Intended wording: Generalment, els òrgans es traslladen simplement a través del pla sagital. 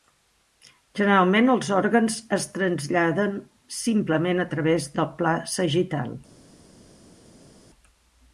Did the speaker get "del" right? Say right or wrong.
right